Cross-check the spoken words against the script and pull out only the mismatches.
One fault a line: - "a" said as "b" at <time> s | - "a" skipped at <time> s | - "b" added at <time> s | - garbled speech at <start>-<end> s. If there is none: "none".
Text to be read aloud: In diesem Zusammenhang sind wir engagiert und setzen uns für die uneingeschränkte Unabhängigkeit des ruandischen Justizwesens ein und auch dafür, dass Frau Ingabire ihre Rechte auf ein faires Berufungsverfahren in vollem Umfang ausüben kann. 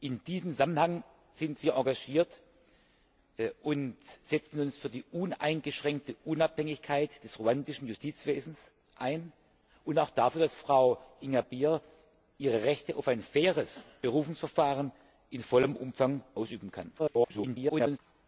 - garbled speech at 17.0-18.0 s